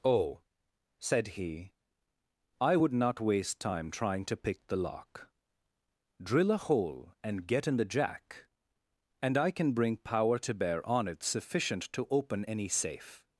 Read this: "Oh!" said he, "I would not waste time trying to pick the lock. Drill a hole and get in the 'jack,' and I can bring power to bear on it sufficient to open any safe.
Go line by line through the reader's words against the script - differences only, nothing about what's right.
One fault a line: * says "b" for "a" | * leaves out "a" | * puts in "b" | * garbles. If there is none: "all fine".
all fine